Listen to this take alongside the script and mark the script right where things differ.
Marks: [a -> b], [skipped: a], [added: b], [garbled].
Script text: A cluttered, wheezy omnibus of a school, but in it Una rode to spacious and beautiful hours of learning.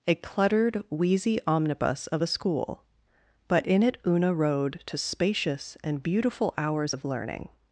A cluttered, wheezy omnibus of a school, but in it Una rode to spacious and beautiful hours of learning.